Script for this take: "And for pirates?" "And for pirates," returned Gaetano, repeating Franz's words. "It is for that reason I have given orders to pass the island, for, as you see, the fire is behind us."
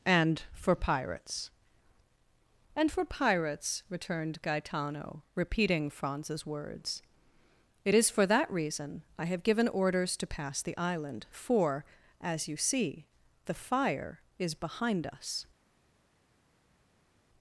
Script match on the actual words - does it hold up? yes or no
yes